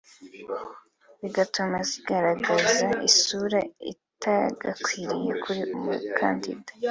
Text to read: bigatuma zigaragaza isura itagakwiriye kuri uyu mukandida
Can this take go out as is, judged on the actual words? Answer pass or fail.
fail